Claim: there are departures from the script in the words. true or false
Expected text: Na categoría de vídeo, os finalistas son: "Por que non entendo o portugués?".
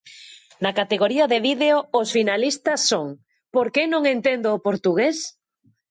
false